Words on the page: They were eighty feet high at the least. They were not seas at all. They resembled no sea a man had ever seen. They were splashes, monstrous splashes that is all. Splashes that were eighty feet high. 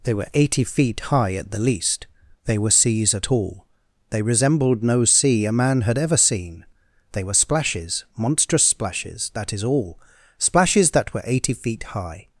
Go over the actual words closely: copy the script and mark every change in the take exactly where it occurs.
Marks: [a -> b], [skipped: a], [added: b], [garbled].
They were eighty feet high at the least. They were [skipped: not] seas at all. They resembled no sea a man had ever seen. They were splashes, monstrous splashes that is all. Splashes that were eighty feet high.